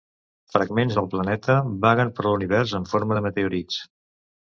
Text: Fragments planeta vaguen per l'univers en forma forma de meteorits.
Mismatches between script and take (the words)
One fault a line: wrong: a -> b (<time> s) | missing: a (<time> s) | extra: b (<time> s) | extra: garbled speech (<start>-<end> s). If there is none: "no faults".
extra: del (1.0 s)
missing: forma (3.2 s)